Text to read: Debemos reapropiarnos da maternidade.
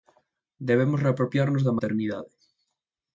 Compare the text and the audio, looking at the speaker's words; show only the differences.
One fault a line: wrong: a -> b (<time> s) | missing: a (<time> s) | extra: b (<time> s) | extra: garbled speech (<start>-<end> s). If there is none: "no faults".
no faults